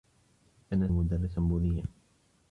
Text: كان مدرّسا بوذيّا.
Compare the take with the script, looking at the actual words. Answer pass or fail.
pass